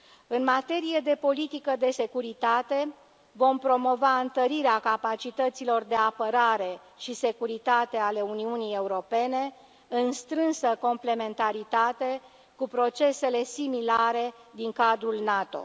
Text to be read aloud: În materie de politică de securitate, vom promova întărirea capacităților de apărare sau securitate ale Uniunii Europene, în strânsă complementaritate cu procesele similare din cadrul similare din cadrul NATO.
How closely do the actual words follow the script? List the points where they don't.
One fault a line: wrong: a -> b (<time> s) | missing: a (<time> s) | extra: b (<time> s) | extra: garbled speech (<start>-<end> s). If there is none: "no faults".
wrong: sau -> și (7.0 s)
missing: similare din cadrul (15.1 s)